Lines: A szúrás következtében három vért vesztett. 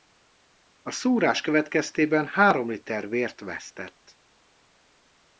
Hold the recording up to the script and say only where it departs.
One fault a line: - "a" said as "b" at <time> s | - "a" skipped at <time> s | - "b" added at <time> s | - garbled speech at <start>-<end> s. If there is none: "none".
- "liter" added at 2.7 s